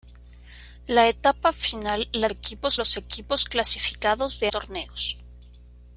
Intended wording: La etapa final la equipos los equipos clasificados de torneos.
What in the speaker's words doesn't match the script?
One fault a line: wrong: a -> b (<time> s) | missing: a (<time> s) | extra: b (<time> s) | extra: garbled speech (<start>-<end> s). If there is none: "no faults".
no faults